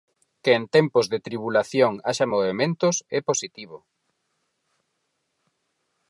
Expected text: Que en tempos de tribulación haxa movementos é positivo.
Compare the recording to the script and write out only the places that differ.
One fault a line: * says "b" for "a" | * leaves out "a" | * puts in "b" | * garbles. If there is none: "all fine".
all fine